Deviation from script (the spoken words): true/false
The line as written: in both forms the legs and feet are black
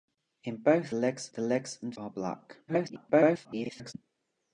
true